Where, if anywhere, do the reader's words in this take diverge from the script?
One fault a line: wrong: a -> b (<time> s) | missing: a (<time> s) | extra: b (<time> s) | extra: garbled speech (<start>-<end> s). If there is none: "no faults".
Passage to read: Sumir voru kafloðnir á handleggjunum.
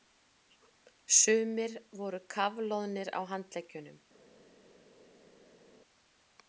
no faults